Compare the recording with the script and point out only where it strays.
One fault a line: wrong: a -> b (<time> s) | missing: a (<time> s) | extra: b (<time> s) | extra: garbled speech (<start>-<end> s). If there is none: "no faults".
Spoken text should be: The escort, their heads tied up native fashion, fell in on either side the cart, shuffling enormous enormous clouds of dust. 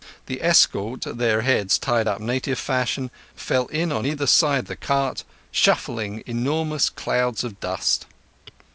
missing: enormous (6.9 s)